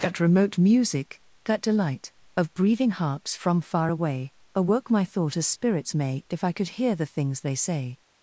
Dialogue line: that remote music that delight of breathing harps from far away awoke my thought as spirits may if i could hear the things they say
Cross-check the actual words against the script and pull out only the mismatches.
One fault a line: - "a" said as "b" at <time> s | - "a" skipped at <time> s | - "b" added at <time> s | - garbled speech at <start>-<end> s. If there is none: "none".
none